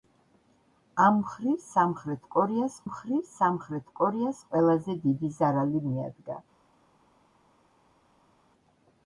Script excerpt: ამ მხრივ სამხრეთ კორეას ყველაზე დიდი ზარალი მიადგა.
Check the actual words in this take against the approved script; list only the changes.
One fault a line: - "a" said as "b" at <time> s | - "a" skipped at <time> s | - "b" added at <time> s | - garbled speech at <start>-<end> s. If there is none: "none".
- "მხრივ სამხრეთ კორეას" added at 2.8 s